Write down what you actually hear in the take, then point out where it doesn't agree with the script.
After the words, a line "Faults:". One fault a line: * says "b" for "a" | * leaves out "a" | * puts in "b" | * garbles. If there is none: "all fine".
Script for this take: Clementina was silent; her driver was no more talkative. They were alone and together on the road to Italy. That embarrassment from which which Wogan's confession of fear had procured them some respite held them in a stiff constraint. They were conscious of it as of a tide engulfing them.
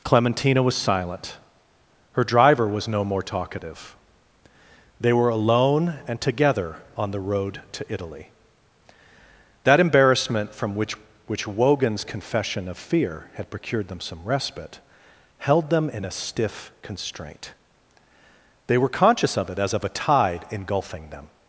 Clementina was silent; her driver was no more talkative. They were alone and together on the road to Italy. That embarrassment from which which Wogan's confession of fear had procured them some respite held them in a stiff constraint. They were conscious of it as of a tide engulfing them.
Faults:
all fine